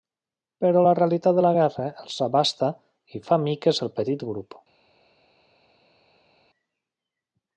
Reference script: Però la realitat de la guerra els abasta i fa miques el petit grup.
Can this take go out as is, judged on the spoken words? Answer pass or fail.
pass